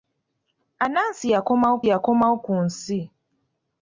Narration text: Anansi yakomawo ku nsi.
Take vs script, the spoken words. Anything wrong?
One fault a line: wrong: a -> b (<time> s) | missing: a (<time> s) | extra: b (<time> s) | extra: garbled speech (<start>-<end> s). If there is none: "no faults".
extra: yakomawo (1.9 s)